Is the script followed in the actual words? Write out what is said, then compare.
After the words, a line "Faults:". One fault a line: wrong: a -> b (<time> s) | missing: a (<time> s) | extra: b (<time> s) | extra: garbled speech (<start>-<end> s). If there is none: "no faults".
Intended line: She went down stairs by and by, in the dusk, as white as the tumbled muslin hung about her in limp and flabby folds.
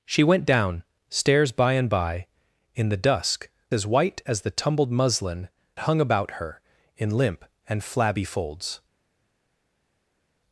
She went down stairs by and by, in the dusk, as white as the tumbled muslin hung about her in limp and flabby folds.
Faults:
no faults